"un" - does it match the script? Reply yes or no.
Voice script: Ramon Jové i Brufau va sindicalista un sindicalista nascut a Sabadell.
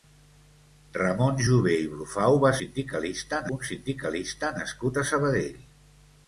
yes